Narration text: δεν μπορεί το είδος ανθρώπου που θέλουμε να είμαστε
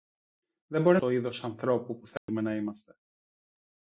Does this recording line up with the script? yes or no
yes